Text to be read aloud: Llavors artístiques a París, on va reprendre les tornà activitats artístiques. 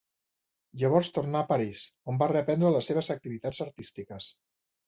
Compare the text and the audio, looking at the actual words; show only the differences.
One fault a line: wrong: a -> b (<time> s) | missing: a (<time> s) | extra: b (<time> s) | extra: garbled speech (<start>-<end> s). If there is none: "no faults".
wrong: artístiques -> tornà (1.2 s)
wrong: tornà -> seves (2.9 s)